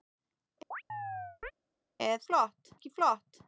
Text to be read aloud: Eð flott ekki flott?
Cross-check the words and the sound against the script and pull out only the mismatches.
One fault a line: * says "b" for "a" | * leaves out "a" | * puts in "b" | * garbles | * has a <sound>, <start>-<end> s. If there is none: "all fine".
* has a chirp, 0.7-1.5 s